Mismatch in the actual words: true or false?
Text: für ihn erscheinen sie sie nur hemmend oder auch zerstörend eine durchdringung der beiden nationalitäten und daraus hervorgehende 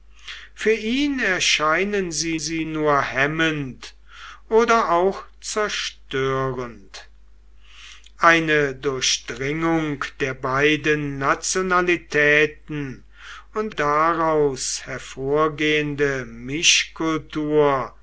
false